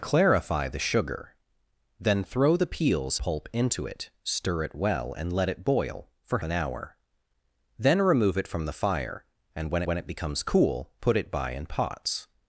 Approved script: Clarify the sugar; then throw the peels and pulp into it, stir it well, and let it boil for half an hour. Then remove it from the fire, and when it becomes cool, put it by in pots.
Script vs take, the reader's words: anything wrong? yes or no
yes